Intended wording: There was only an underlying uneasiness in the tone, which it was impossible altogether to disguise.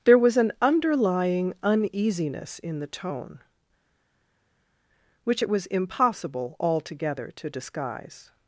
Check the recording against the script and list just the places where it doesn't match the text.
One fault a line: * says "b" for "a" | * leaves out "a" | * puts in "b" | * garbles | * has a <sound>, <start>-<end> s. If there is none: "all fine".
* leaves out "only"